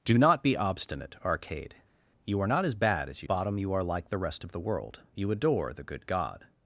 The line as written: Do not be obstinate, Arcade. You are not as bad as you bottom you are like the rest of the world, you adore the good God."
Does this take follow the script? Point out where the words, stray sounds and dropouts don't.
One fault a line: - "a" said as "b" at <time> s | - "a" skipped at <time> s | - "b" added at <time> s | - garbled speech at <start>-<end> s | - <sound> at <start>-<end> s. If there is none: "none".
none